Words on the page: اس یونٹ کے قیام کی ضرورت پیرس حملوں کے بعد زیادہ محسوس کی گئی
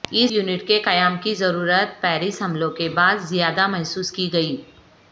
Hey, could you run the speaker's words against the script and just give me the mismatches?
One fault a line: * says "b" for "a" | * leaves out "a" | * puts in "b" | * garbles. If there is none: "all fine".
all fine